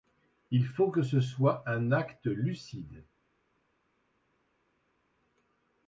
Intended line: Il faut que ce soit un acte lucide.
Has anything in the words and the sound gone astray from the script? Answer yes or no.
no